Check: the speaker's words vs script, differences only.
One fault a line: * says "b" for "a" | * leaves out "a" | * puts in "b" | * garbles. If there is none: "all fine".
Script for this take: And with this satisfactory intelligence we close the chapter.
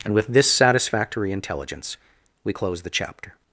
all fine